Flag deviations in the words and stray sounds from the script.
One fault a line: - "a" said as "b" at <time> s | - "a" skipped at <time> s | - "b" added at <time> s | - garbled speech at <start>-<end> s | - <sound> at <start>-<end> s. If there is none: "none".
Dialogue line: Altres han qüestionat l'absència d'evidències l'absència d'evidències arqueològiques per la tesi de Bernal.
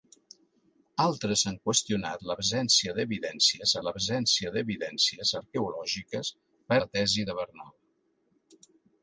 none